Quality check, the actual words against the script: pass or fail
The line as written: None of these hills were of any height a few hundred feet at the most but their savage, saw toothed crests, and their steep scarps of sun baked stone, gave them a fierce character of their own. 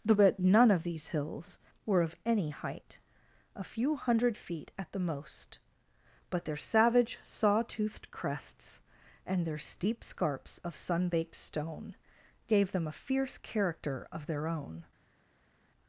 fail